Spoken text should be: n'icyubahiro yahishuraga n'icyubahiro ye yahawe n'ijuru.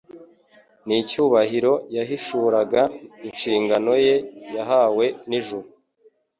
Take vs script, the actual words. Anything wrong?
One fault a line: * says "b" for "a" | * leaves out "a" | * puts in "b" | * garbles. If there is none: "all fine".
* says "inshingano" for "n'icyubahiro"